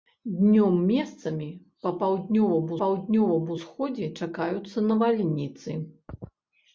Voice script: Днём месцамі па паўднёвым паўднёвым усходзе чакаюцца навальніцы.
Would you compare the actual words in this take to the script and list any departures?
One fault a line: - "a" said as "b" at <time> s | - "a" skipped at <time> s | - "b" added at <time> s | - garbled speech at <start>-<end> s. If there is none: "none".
none